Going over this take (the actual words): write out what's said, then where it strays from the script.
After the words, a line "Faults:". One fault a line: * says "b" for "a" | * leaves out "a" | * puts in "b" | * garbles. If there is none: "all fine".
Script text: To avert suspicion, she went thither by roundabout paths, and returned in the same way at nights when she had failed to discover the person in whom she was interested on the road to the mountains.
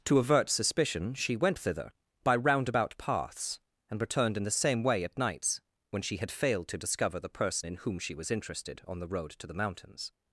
To avert suspicion, she went thither by roundabout paths, and returned in the same way at nights when she had failed to discover the person in whom she was interested on the road to the mountains.
Faults:
all fine